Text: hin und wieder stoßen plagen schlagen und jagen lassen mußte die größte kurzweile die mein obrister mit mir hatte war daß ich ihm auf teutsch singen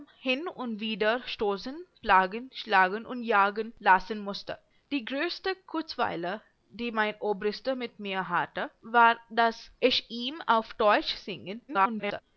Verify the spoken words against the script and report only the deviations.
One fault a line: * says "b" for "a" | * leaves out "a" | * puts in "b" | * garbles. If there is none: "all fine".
* garbles